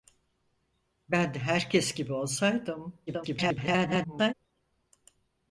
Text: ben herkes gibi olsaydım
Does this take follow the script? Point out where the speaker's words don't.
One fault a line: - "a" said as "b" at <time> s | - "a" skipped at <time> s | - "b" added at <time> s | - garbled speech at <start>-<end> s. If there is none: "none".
- garbled speech at 3.1-4.3 s